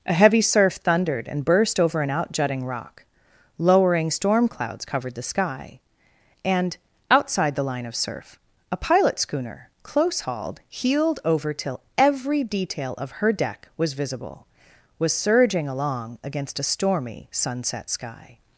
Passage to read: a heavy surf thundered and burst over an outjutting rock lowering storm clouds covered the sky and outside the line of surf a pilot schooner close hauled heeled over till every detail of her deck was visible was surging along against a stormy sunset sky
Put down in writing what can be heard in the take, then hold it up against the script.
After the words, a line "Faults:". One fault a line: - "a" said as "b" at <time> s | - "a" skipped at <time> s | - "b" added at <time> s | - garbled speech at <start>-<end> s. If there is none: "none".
a heavy surf thundered and burst over an outjutting rock lowering storm clouds covered the sky and outside the line of surf a pilot schooner close hauled heeled over till every detail of her deck was visible was surging along against a stormy sunset sky
Faults:
none